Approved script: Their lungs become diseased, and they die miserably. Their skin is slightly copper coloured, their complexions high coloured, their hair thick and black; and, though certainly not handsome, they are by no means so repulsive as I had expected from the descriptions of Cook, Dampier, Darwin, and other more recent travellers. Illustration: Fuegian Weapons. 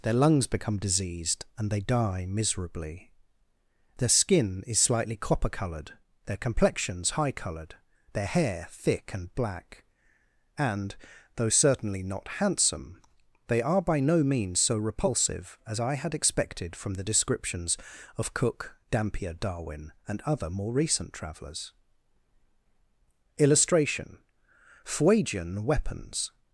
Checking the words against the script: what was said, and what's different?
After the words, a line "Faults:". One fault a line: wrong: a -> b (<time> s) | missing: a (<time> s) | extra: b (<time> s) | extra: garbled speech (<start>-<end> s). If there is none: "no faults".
Their lungs become diseased, and they die miserably. Their skin is slightly copper coloured, their complexions high coloured, their hair thick and black; and, though certainly not handsome, they are by no means so repulsive as I had expected from the descriptions of Cook, Dampier, Darwin, and other more recent travellers. Illustration: Fuegian Weapons.
Faults:
no faults